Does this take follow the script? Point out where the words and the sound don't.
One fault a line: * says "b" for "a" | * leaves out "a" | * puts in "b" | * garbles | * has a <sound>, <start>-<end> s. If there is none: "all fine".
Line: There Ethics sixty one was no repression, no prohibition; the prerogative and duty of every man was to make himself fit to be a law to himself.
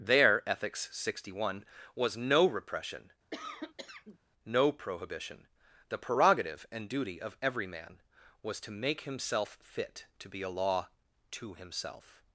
* has a cough, 3.3-4.2 s